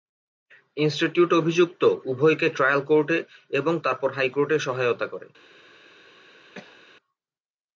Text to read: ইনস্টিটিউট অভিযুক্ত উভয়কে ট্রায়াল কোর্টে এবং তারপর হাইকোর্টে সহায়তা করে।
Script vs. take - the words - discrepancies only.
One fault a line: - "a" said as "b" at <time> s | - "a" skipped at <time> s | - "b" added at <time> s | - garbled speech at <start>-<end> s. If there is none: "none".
none